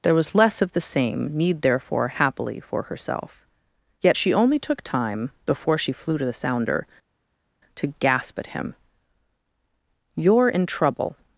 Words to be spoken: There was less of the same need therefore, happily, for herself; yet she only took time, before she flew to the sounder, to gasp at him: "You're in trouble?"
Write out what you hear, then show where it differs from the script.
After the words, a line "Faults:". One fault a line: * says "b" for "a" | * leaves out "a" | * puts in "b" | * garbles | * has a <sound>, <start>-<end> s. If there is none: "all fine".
There was less of the same need therefore, happily, for herself; yet she only took time, before she flew to the sounder, to gasp at him: "You're in trouble?"
Faults:
all fine